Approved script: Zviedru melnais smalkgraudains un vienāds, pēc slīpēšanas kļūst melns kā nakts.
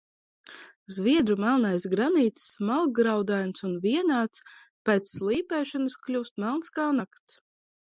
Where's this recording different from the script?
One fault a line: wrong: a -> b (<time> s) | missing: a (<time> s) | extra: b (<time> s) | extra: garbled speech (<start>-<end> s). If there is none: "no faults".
extra: granīts (1.9 s)